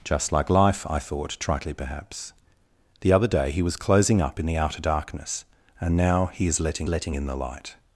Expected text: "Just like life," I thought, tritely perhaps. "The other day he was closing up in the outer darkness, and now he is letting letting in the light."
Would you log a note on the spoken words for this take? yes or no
no